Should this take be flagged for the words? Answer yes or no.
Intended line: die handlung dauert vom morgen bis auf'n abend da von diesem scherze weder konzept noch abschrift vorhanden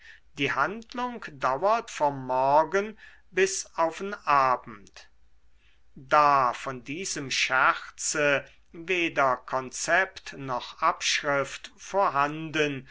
no